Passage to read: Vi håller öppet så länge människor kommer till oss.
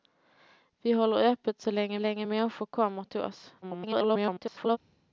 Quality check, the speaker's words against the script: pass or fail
fail